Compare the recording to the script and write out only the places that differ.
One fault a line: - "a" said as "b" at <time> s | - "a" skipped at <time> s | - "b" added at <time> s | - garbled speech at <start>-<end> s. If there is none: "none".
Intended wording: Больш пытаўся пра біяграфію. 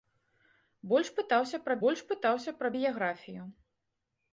- "больш пытаўся пра" added at 1.8 s